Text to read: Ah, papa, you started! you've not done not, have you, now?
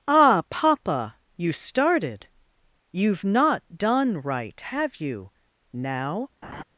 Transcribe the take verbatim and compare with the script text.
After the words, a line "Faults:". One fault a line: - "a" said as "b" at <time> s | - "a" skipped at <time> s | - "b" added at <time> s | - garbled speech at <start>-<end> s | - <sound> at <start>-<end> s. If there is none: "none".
Ah, papa, you started! you've not done right, have you, now?
Faults:
- "not" said as "right" at 4.2 s
- laugh at 6.4-6.6 s